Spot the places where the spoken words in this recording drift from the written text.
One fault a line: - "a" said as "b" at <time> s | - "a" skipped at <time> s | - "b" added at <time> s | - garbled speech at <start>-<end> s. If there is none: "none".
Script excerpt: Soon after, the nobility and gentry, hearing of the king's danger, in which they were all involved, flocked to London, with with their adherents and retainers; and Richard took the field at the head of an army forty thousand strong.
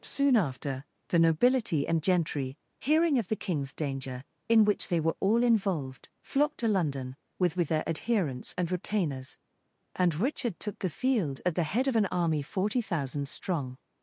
none